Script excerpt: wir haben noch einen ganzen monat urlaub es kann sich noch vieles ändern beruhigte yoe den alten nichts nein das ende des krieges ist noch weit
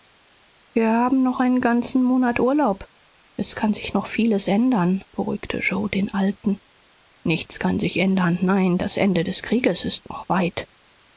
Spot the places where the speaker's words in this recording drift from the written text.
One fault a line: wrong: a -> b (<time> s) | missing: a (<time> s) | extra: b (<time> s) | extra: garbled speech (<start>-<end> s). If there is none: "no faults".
extra: kann sich ändern (7.6 s)